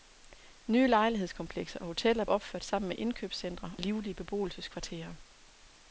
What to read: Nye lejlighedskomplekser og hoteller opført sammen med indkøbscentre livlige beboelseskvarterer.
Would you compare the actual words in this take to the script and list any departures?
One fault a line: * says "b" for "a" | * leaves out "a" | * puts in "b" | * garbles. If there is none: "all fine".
all fine